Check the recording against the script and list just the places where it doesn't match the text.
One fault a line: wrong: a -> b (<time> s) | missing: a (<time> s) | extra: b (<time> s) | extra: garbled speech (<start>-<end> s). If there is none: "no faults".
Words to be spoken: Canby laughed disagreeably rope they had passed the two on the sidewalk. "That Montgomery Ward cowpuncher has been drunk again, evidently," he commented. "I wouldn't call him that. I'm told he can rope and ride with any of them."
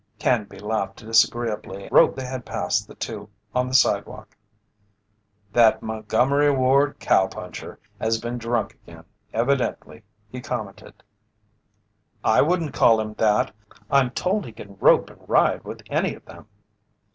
no faults